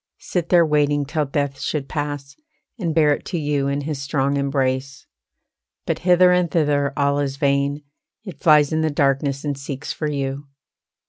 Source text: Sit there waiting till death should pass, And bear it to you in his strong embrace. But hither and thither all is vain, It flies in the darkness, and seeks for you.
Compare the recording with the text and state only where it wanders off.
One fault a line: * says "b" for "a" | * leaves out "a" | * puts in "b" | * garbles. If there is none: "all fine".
all fine